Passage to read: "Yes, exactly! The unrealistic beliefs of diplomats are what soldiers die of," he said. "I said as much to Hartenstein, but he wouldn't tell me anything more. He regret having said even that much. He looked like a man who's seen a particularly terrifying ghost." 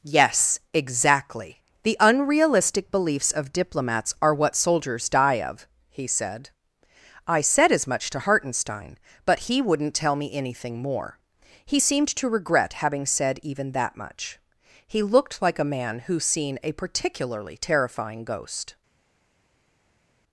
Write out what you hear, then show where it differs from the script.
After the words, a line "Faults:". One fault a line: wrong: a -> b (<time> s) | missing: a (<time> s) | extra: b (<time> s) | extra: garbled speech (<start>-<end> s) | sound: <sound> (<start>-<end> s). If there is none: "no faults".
"Yes, exactly! The unrealistic beliefs of diplomats are what soldiers die of," he said. "I said as much to Hartenstein, but he wouldn't tell me anything more. He seemed to regret having said even that much. He looked like a man who's seen a particularly terrifying ghost."
Faults:
extra: seemed to (11.8 s)